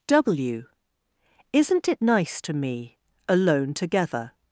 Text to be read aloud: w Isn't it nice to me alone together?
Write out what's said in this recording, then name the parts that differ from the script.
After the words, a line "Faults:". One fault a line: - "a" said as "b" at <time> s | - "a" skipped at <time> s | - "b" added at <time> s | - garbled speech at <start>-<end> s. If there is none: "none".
w Isn't it nice to me alone together?
Faults:
none